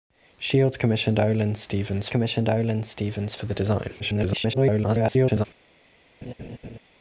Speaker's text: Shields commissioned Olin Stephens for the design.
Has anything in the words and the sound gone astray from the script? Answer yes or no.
yes